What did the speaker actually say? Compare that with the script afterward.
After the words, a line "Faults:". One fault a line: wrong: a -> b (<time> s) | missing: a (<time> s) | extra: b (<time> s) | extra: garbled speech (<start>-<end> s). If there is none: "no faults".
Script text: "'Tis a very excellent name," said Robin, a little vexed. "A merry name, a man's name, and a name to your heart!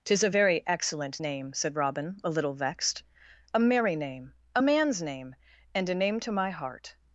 "'Tis a very excellent name," said Robin, a little vexed. "A merry name, a man's name, and a name to my heart!
Faults:
wrong: your -> my (6.3 s)